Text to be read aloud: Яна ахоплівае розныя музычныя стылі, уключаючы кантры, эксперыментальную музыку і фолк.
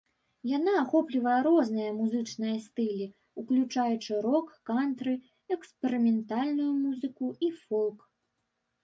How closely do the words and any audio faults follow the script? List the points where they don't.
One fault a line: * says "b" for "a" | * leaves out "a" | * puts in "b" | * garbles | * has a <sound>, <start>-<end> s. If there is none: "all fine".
* puts in "рок"